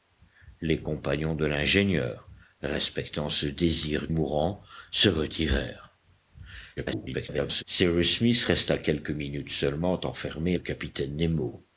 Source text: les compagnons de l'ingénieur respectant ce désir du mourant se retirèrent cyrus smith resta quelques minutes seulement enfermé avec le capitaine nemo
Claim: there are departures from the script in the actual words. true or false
true